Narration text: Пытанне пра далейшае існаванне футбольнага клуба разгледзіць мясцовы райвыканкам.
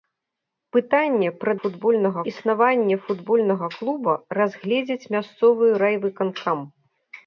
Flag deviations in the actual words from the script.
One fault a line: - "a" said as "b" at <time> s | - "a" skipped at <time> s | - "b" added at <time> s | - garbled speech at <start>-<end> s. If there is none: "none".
- "далейшае" said as "футбольнага" at 1.7 s